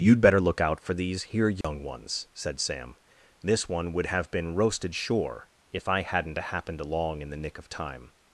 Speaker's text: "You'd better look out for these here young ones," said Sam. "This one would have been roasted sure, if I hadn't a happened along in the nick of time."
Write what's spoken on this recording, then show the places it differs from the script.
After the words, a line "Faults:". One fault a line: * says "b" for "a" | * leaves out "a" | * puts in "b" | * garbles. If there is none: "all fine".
"You'd better look out for these here young ones," said Sam. "This one would have been roasted sure, if I hadn't a happened along in the nick of time."
Faults:
all fine